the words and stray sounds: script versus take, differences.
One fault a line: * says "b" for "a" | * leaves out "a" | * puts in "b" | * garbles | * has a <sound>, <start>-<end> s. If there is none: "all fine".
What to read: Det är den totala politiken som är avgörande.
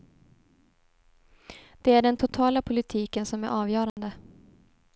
* has a dropout, 3.9-4.0 s